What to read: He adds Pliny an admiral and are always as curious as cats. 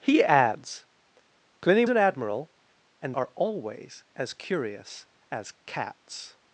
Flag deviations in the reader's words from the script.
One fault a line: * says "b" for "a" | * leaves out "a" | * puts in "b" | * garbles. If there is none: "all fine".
all fine